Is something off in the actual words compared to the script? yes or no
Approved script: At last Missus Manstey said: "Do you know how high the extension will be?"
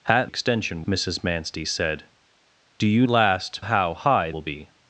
yes